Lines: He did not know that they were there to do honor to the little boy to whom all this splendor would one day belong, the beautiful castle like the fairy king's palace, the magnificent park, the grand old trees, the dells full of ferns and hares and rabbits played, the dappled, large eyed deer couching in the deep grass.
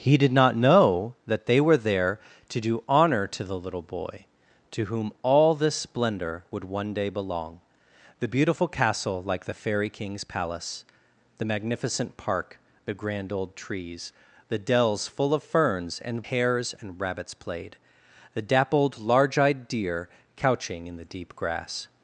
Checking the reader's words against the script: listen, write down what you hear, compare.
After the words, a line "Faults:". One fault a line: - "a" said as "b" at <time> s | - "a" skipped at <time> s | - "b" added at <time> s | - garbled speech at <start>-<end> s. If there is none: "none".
He did not know that they were there to do honor to the little boy to whom all this splendor would one day belong, the beautiful castle like the fairy king's palace, the magnificent park, the grand old trees, the dells full of ferns and hares and rabbits played, the dappled, large eyed deer couching in the deep grass.
Faults:
none